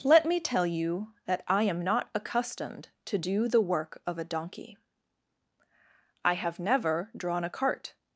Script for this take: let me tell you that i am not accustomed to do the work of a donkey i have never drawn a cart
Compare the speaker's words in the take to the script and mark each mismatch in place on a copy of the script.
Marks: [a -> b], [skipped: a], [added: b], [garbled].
let me tell you that i am not accustomed to do the work of a donkey i have never drawn a cart